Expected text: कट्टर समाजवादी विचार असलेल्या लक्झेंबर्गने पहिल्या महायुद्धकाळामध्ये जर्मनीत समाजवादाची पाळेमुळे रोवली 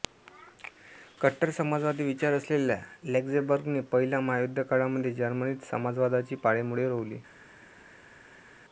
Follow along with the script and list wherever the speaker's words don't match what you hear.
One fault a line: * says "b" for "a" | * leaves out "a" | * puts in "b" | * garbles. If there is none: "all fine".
all fine